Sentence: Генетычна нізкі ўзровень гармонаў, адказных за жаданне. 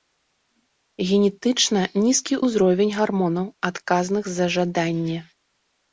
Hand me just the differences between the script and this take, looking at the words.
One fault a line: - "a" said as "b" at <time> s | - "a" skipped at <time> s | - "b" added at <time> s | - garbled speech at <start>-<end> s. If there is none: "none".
none